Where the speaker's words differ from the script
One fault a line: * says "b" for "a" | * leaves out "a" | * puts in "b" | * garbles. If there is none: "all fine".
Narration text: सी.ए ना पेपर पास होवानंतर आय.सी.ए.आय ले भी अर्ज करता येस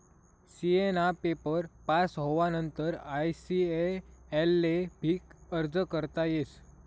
all fine